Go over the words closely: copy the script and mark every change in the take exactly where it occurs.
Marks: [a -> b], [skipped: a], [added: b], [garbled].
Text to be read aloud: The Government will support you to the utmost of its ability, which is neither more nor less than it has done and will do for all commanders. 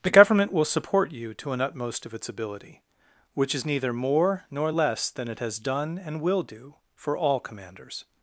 The Government will support you to [the -> an] utmost of its ability, which is neither more nor less than it has done and will do for all commanders.